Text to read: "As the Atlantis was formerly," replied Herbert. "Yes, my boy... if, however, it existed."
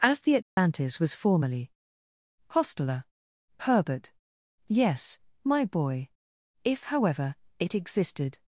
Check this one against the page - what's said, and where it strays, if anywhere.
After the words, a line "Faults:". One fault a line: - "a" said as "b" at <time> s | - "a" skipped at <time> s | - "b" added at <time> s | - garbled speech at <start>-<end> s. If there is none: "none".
"As the Atlantis was formerly," hostler Herbert. "Yes, my boy... if, however, it existed."
Faults:
- "replied" said as "hostler" at 2.5 s